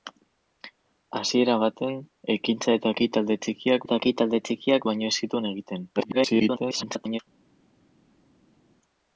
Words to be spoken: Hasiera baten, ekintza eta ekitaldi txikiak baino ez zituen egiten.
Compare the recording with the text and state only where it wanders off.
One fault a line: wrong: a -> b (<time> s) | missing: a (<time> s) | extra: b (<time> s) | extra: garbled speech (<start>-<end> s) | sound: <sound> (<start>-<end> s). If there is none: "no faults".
extra: eta ekitaldi txikiak (3.8 s)
extra: garbled speech (6.0-7.2 s)